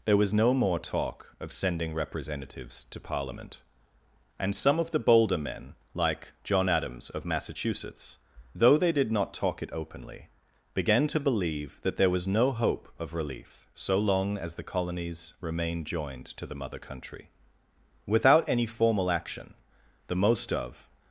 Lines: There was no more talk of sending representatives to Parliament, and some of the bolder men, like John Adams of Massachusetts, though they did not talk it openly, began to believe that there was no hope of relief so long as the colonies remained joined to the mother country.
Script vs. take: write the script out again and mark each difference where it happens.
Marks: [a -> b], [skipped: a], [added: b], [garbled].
There was no more talk of sending representatives to Parliament, and some of the bolder men, like John Adams of Massachusetts, though they did not talk it openly, began to believe that there was no hope of relief so long as the colonies remained joined to the mother country. [added: Without any formal action the most of]